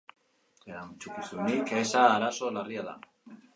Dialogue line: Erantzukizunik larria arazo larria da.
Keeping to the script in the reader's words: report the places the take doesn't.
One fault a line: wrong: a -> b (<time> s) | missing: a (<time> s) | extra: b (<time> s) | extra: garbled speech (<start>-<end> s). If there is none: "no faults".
wrong: larria -> eza (1.8 s)